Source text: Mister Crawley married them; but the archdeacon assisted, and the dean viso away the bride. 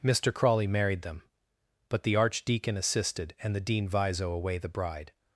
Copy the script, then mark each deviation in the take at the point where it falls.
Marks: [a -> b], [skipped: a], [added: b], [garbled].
Mister Crawley married them; but the archdeacon assisted, and the dean viso away the bride.